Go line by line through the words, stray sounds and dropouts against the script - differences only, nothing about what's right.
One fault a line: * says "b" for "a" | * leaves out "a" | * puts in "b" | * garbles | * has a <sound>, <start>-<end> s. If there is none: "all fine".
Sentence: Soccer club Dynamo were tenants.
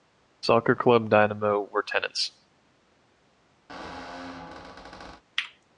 * has a squeak, 3.7-5.2 s